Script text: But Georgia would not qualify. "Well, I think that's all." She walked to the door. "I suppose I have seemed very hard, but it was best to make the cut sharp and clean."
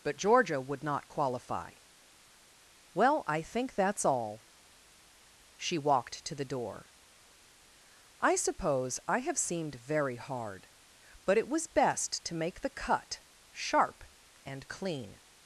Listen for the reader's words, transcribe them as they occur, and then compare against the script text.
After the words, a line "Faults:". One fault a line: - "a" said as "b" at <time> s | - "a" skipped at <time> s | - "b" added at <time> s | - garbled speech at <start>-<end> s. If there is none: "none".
But Georgia would not qualify. "Well, I think that's all." She walked to the door. "I suppose I have seemed very hard, but it was best to make the cut sharp and clean."
Faults:
none